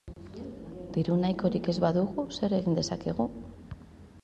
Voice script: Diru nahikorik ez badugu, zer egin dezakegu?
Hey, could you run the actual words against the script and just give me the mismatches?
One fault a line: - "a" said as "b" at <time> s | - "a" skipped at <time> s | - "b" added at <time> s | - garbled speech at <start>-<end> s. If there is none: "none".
none